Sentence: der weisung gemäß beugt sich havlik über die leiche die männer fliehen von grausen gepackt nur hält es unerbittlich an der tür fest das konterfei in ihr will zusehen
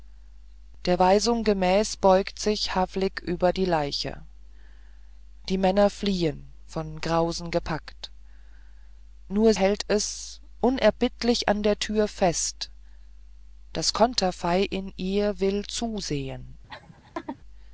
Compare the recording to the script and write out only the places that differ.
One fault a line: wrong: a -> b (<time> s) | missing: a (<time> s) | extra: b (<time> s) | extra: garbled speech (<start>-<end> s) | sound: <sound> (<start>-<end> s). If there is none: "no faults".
sound: laugh (16.7-17.4 s)